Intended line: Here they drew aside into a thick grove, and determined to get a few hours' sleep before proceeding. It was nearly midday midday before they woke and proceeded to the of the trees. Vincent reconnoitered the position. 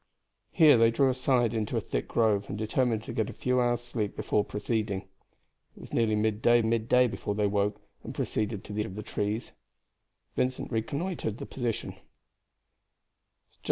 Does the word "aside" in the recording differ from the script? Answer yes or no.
no